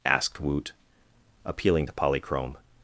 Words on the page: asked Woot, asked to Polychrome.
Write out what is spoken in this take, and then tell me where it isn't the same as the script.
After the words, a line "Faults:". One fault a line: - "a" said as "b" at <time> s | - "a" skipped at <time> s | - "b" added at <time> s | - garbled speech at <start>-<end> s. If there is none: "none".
asked Woot, appealing to Polychrome.
Faults:
- "asked" said as "appealing" at 1.4 s